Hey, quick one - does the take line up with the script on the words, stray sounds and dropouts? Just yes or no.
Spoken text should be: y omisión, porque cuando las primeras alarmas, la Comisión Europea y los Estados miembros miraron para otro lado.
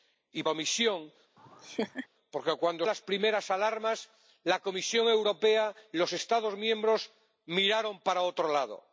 no